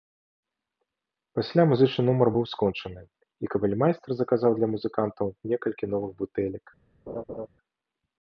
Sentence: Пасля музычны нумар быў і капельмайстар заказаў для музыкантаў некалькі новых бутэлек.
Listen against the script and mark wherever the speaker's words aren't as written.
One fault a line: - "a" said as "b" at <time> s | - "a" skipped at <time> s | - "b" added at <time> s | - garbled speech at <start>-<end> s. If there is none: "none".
- "скончаны" added at 2.5 s